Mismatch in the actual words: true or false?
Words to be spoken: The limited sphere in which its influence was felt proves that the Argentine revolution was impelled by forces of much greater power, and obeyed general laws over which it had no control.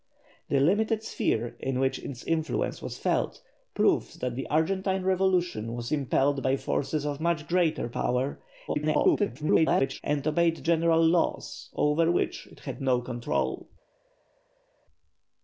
true